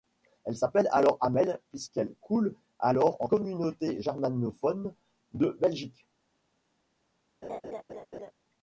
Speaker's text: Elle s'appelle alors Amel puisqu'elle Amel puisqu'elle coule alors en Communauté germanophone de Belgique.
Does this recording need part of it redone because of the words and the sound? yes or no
yes